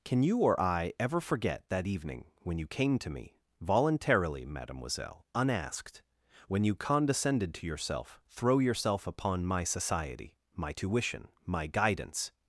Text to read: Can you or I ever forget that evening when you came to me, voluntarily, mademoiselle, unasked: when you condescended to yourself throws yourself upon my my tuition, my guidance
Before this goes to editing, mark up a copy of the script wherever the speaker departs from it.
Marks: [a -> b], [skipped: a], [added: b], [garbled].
Can you or I ever forget that evening when you came to me, voluntarily, mademoiselle, unasked: when you condescended to yourself [throws -> throw] yourself upon my [added: society] my tuition, my guidance